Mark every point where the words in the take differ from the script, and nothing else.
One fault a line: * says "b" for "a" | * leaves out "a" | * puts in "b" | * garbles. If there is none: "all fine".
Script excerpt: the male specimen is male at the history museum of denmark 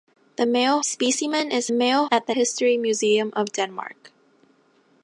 all fine